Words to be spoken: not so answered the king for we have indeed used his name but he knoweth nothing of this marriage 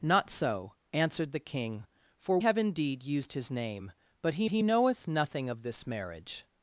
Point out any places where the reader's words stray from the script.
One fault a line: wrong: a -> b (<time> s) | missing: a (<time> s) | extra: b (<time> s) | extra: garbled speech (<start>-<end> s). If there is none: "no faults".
missing: we (2.4 s)
extra: he (4.5 s)